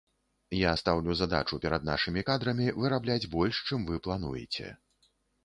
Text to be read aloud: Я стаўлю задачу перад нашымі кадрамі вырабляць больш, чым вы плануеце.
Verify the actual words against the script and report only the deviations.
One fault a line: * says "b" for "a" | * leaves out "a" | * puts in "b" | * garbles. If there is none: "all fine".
all fine